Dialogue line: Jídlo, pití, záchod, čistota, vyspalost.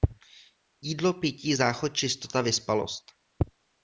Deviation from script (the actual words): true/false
false